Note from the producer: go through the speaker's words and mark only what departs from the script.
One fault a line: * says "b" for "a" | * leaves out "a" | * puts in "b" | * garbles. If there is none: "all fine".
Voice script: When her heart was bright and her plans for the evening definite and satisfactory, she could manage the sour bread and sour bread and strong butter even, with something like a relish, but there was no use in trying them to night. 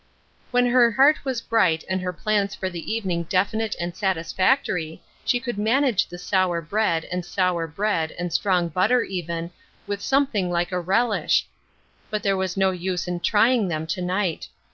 all fine